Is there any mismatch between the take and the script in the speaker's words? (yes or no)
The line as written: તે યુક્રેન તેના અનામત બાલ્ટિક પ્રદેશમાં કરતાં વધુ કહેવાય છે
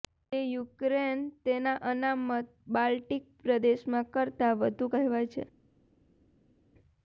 no